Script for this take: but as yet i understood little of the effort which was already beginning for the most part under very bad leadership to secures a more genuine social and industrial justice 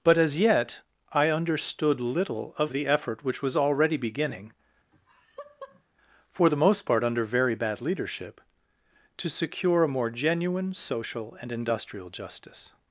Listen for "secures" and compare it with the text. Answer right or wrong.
wrong